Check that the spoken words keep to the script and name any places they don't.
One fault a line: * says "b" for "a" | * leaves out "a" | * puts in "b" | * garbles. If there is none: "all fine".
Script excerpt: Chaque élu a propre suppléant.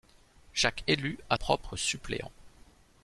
all fine